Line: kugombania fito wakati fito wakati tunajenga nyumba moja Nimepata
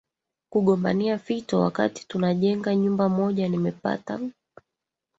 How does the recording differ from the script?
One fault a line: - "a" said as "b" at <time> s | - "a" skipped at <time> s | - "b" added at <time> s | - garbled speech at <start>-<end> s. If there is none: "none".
- "fito wakati" skipped at 2.1 s